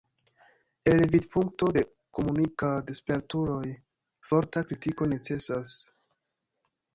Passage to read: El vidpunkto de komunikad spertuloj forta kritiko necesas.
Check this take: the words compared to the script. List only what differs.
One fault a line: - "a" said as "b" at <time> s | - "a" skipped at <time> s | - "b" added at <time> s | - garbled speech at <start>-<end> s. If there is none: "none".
none